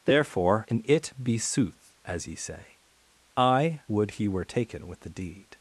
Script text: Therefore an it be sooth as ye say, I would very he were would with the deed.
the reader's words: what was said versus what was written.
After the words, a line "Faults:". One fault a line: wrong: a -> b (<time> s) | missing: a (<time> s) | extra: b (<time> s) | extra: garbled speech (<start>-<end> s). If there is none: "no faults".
Therefore an it be sooth as ye say, I would he were taken with the deed.
Faults:
missing: very (4.1 s)
wrong: would -> taken (4.4 s)